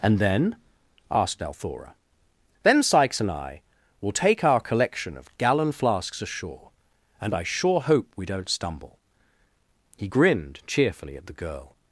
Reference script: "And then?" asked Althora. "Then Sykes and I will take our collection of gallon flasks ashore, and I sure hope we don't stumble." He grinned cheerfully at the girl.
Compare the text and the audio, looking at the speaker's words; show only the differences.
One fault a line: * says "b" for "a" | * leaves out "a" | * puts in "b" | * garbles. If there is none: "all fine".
all fine